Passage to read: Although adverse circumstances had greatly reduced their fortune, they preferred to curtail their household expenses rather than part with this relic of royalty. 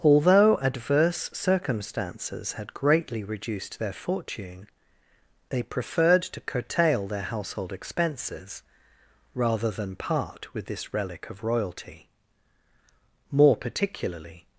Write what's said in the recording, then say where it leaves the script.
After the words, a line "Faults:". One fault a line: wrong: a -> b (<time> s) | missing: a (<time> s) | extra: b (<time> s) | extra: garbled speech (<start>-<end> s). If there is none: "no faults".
Although adverse circumstances had greatly reduced their fortune, they preferred to curtail their household expenses rather than part with this relic of royalty. More particularly
Faults:
extra: More particularly (13.3 s)